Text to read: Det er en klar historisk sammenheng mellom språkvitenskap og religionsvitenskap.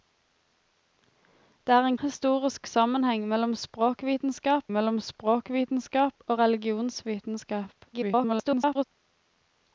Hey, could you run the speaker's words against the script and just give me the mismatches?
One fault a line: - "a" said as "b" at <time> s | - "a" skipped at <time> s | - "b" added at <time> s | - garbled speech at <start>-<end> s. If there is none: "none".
- "klar" skipped at 2.0 s
- "mellom språkvitenskap" added at 4.7 s
- garbled speech at 7.9-8.8 s